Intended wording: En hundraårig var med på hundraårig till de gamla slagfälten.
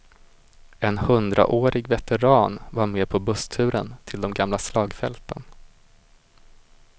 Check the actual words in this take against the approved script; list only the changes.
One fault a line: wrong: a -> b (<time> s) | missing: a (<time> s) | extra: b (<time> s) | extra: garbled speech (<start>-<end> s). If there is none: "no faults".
extra: veteran (1.9 s)
wrong: hundraårig -> bussturen (3.2 s)